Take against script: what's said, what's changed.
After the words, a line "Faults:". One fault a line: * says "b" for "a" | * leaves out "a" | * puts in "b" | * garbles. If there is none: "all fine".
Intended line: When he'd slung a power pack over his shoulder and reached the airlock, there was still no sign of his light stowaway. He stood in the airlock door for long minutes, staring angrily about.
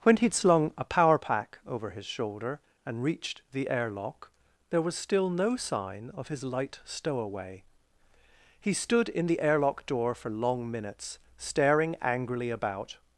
When he'd slung a power pack over his shoulder and reached the airlock, there was still no sign of his light stowaway. He stood in the airlock door for long minutes, staring angrily about.
Faults:
all fine